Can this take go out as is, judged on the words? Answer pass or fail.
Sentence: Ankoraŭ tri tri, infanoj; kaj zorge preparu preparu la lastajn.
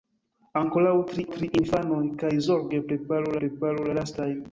pass